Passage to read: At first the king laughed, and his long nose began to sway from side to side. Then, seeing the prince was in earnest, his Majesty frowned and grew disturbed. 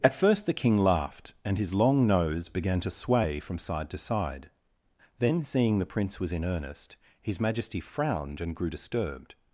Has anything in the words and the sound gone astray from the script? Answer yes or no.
no